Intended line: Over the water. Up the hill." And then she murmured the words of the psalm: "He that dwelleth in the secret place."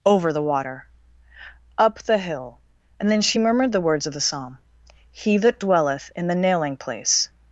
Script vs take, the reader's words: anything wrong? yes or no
yes